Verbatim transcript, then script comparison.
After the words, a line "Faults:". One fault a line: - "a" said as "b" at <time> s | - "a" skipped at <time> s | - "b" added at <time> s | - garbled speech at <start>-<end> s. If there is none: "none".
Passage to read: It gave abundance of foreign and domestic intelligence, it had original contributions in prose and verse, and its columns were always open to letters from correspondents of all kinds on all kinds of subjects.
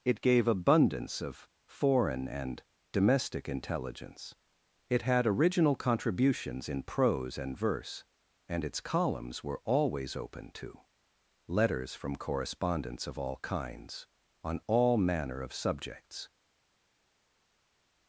It gave abundance of foreign and domestic intelligence, it had original contributions in prose and verse, and its columns were always open to letters from correspondents of all kinds on all manner of subjects.
Faults:
- "kinds" said as "manner" at 15.0 s